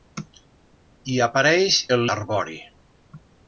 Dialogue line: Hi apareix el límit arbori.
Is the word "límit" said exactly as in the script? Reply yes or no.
no